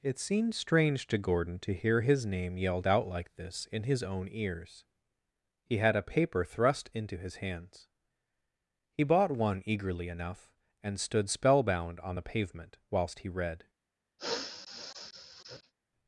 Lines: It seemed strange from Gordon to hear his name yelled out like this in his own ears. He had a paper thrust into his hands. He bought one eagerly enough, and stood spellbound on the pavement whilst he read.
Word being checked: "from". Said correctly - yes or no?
no